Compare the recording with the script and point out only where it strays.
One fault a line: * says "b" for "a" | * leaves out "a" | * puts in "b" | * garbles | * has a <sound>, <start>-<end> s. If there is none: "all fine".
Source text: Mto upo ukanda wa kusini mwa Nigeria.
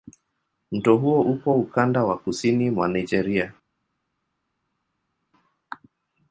* puts in "huo"